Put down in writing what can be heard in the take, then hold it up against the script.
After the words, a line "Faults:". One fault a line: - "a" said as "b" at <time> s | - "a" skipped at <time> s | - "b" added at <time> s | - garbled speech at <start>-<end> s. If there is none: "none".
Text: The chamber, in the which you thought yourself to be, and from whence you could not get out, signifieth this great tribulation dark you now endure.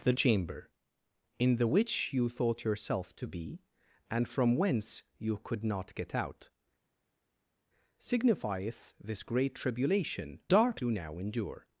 The chamber, in the which you thought yourself to be, and from whence you could not get out, signifieth this great tribulation dark you now endure.
Faults:
none